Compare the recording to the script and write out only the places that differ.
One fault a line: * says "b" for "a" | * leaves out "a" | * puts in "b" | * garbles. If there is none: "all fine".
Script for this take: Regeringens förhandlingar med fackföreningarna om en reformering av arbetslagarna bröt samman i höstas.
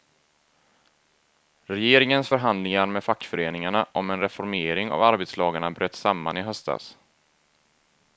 all fine